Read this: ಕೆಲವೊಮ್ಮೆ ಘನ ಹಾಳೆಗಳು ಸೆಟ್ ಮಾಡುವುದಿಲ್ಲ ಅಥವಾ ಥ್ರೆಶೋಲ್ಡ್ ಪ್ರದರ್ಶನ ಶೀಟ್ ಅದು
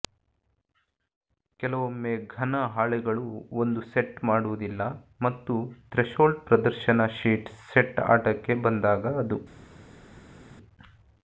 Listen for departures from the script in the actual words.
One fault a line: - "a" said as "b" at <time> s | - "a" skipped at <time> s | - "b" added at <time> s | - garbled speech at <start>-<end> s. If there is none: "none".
- "ಒಂದು" added at 3.6 s
- "ಅಥವಾ" said as "ಮತ್ತು" at 5.2 s
- "ಸೆಟ್ ಆಟಕ್ಕೆ ಬಂದಾಗ" added at 7.7 s